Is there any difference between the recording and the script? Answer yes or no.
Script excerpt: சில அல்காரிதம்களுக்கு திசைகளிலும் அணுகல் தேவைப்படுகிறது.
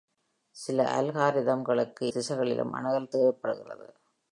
no